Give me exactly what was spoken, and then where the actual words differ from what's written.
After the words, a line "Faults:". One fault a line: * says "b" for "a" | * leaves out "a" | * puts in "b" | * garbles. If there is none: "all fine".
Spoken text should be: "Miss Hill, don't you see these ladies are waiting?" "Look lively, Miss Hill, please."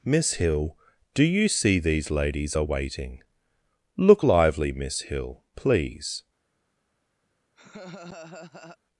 "Miss Hill, do you see these ladies are waiting?" "Look lively, Miss Hill, please."
Faults:
* says "do" for "don't"